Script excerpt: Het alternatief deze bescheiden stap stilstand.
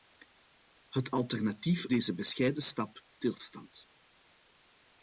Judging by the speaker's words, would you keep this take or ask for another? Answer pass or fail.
pass